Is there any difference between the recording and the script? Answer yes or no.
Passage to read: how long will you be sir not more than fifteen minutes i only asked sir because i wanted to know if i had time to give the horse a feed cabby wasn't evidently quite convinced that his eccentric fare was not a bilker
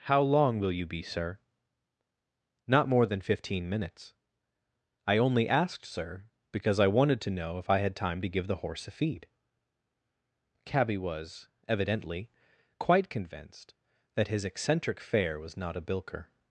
yes